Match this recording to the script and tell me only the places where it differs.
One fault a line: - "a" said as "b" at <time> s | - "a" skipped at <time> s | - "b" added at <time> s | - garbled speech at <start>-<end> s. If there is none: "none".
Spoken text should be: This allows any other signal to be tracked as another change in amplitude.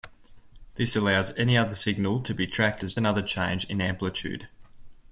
none